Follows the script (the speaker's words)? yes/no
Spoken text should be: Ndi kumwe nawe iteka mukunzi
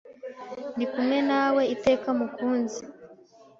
yes